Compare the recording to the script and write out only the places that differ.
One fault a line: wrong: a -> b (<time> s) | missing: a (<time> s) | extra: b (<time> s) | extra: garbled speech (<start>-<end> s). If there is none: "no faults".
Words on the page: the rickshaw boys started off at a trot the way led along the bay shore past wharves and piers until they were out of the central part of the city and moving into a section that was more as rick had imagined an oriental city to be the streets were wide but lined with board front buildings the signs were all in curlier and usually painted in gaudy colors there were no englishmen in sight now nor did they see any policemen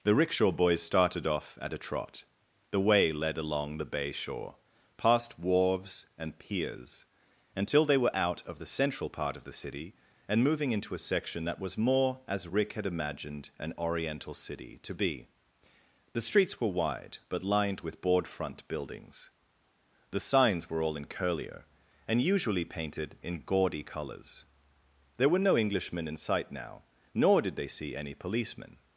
no faults